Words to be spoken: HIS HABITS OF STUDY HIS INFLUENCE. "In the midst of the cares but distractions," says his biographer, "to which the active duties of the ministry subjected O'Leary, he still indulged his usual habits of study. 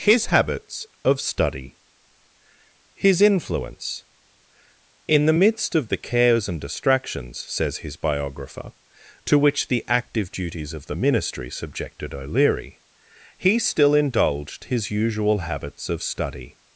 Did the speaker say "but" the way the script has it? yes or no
no